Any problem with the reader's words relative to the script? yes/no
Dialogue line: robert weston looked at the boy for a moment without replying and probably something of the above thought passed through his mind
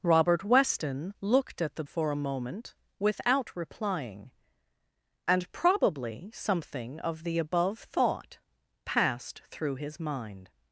yes